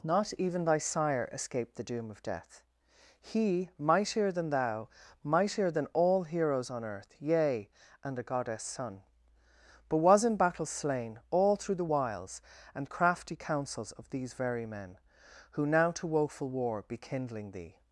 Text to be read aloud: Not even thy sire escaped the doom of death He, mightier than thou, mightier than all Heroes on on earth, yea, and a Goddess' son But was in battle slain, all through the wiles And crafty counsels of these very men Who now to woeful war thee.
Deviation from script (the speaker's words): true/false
true